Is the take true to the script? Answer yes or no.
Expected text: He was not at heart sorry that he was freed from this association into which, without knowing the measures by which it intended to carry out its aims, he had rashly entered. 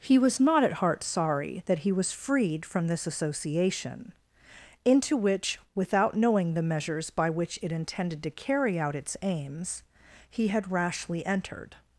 yes